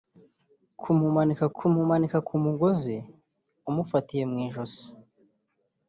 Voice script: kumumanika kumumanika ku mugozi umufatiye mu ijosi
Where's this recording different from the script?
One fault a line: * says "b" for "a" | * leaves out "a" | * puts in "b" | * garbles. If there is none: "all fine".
all fine